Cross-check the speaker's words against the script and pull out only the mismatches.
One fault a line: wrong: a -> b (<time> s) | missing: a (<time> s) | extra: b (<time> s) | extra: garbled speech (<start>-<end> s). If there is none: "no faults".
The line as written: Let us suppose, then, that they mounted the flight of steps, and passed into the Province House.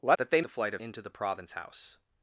missing: us suppose then (0.2 s)
missing: mounted (0.4 s)
missing: steps and passed (0.8 s)